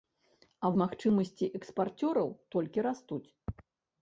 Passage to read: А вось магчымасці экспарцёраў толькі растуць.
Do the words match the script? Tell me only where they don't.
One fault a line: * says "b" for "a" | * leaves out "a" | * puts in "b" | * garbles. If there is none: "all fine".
* leaves out "вось"